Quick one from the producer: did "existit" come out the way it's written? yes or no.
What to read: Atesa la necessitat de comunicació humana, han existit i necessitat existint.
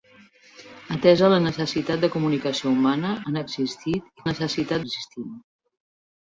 yes